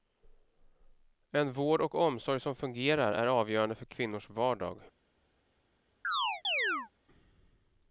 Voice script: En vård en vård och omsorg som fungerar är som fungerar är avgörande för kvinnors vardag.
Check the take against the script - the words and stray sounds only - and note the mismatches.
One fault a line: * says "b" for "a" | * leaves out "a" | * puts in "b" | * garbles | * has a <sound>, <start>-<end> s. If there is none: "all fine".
* leaves out "en vård"
* leaves out "som fungerar är"
* has a chirp, 6.0-6.9 s